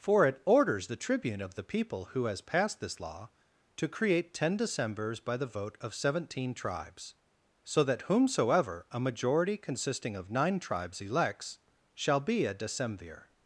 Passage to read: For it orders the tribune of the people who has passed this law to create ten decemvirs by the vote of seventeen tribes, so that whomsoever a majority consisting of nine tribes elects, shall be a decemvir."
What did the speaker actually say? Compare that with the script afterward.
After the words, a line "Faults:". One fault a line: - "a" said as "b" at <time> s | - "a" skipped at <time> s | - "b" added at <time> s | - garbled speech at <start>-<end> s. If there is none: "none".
For it orders the tribune of the people who has passed this law to create ten decemvirs by the vote of seventeen tribes, so that whomsoever a majority consisting of nine tribes elects, shall be a decemvir."
Faults:
none